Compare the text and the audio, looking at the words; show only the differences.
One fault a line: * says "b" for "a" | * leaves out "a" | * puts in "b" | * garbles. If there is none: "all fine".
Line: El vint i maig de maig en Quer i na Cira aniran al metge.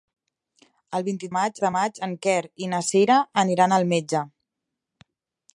all fine